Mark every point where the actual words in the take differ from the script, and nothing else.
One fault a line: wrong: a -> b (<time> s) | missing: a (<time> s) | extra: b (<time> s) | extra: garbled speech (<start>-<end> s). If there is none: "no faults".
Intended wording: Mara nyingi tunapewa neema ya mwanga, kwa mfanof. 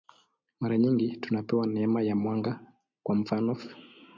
no faults